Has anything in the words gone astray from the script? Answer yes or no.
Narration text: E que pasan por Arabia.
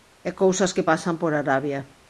yes